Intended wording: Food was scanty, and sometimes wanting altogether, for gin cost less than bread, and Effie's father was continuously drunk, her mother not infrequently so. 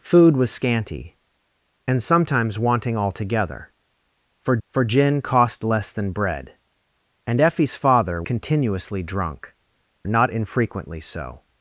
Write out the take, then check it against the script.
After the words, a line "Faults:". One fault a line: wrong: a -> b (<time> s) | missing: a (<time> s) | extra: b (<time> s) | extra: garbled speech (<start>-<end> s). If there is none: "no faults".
Food was scanty, and sometimes wanting altogether, for for gin cost less than bread, and Effie's father continuously drunk, not infrequently so.
Faults:
extra: for (4.7 s)
missing: was (8.2 s)
missing: her mother (9.5 s)